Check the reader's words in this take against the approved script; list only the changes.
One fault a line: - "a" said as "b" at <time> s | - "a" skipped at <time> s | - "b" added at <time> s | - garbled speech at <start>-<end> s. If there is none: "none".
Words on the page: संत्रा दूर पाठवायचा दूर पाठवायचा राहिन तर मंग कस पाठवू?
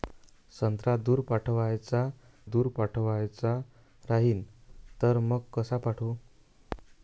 none